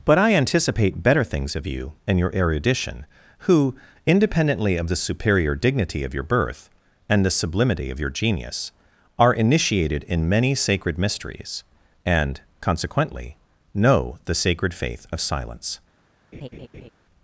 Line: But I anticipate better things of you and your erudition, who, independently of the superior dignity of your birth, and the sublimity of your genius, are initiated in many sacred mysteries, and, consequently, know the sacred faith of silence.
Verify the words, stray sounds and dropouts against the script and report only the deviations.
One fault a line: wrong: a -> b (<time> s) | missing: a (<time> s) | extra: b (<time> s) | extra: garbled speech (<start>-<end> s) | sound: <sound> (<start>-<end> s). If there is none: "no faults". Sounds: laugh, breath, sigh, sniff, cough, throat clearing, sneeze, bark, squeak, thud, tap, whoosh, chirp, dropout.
sound: laugh (16.3-16.9 s)